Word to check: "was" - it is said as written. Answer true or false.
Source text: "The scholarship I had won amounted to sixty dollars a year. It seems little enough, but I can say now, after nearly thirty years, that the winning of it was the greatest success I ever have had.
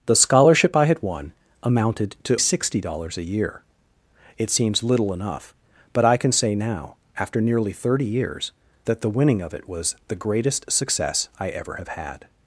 true